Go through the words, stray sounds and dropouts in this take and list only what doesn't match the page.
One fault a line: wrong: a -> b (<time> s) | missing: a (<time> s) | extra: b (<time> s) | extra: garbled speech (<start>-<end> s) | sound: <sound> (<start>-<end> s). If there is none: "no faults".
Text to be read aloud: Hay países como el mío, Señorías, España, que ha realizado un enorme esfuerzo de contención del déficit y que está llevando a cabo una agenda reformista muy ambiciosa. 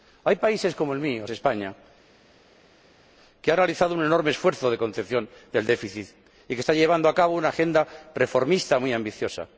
missing: Señorías (1.3 s)